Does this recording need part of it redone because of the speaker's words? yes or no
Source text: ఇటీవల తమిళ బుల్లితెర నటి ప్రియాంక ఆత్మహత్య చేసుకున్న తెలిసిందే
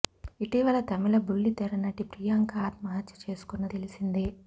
no